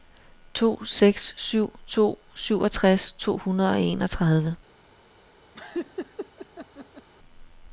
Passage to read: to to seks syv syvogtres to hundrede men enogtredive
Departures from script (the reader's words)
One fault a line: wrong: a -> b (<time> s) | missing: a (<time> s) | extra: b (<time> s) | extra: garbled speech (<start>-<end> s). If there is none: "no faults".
missing: to (0.8 s)
extra: to (1.9 s)
wrong: men -> og (3.7 s)